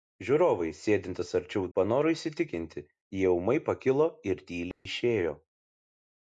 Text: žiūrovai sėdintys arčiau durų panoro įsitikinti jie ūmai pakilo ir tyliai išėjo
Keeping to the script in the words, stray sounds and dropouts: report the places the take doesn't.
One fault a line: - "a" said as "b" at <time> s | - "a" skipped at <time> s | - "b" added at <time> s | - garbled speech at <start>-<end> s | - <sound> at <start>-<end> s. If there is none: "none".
- "durų" skipped at 1.7 s
- dropout at 4.7-4.9 s